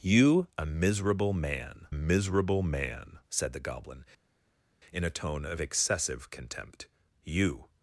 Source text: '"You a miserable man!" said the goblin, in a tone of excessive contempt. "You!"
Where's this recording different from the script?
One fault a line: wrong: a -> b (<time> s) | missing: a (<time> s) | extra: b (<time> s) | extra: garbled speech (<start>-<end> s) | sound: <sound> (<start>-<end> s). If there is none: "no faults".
extra: miserable man (1.9 s)